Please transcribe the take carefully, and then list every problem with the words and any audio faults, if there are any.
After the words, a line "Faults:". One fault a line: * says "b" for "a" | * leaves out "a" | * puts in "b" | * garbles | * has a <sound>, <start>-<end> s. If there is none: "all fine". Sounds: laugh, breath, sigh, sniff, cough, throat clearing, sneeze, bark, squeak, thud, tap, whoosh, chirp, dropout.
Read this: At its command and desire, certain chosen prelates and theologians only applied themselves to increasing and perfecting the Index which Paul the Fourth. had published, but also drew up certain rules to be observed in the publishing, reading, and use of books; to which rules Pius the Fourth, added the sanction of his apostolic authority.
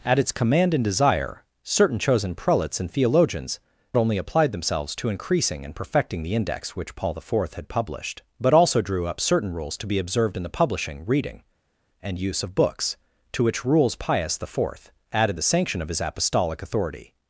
At its command and desire, certain chosen prelates and theologians only applied themselves to increasing and perfecting the Index which Paul the Fourth. had published, but also drew up certain rules to be observed in the publishing, reading, and use of books; to which rules Pius the Fourth, added the sanction of his apostolic authority.
Faults:
all fine